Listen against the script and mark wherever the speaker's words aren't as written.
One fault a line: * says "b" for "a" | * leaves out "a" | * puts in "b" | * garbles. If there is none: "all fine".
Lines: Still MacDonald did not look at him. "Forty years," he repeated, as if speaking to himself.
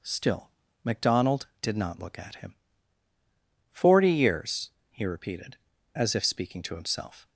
all fine